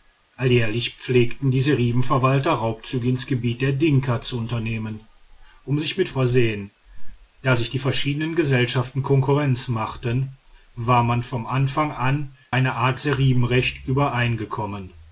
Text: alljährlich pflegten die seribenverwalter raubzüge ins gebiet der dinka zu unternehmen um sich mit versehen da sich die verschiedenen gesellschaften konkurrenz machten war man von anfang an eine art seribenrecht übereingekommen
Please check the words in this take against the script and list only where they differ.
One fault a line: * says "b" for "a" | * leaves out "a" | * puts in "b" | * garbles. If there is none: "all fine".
all fine